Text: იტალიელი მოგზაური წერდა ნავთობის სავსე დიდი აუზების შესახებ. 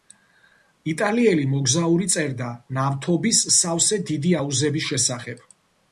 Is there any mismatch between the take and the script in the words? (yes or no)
no